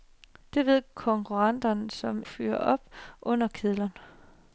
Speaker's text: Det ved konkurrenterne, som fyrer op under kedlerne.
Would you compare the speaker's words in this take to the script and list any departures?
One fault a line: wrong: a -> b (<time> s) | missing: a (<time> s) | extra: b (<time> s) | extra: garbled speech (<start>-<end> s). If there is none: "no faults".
no faults